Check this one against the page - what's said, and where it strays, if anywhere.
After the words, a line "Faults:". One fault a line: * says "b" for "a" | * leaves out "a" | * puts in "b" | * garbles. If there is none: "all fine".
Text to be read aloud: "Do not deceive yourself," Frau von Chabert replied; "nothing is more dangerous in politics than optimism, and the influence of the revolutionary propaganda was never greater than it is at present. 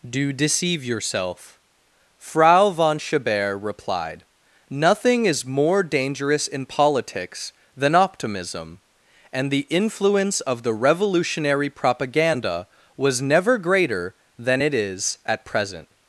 "Do deceive yourself," Frau von Chabert replied; "nothing is more dangerous in politics than optimism, and the influence of the revolutionary propaganda was never greater than it is at present.
Faults:
* leaves out "not"